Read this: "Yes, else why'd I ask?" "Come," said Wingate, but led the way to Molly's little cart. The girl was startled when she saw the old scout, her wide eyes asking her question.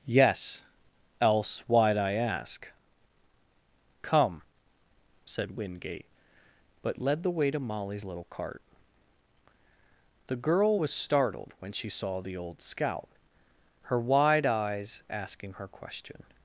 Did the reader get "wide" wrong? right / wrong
right